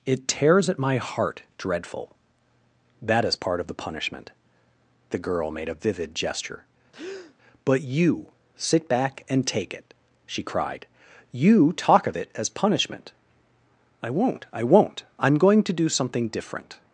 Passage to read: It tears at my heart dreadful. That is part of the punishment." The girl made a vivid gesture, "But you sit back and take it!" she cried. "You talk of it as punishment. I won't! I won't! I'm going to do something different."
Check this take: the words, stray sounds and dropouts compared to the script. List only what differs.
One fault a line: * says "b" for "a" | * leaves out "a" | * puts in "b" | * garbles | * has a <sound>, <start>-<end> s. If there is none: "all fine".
* has a breath, 6.9-7.3 s